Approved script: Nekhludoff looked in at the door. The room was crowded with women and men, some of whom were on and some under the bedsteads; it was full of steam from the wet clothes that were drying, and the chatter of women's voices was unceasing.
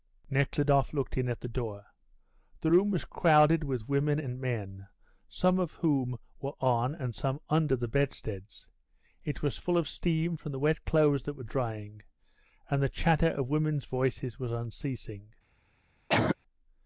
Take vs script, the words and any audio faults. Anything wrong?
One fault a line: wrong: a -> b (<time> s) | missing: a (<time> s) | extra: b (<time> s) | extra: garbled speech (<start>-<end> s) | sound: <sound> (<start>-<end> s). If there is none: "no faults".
sound: cough (16.1-16.4 s)